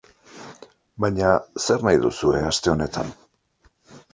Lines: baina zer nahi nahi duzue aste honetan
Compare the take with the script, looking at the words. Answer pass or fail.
fail